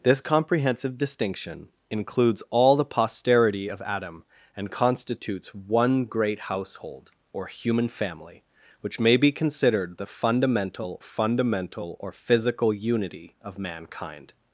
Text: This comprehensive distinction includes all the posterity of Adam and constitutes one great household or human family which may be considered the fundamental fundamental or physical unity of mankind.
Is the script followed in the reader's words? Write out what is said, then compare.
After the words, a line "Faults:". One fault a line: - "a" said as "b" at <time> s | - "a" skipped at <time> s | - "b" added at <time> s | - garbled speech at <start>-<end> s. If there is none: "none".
This comprehensive distinction includes all the posterity of Adam and constitutes one great household or human family which may be considered the fundamental fundamental or physical unity of mankind.
Faults:
none